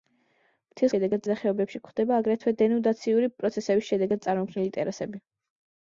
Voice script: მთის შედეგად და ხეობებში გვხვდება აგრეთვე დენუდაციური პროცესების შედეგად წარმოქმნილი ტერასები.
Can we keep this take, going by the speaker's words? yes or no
yes